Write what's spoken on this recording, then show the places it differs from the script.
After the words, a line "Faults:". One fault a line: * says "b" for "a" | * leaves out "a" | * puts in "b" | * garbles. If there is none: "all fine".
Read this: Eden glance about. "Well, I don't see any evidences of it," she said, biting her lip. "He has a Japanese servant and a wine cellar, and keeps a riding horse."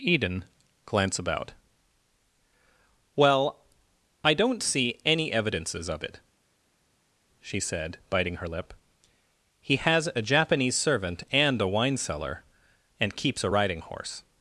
Eden glance about. "Well, I don't see any evidences of it," she said, biting her lip. "He has a Japanese servant and a wine cellar, and keeps a riding horse."
Faults:
all fine